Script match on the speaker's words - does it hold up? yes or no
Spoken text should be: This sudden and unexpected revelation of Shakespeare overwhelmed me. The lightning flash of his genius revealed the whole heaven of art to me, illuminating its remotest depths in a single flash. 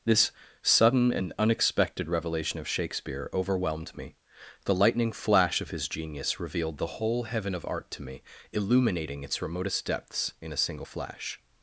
yes